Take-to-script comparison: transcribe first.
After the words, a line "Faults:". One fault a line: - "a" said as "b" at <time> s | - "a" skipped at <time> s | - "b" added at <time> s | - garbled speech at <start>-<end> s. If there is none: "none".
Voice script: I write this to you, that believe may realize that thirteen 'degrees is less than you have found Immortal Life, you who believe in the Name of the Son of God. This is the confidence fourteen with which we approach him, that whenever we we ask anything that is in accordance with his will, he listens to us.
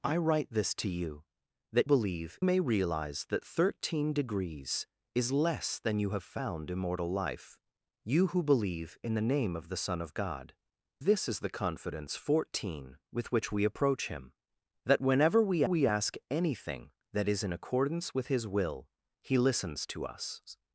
I write this to you, that believe may realize that thirteen 'degrees is less than you have found Immortal Life, you who believe in the Name of the Son of God. This is the confidence fourteen with which we approach him, that whenever we we ask anything that is in accordance with his will, he listens to us.
Faults:
none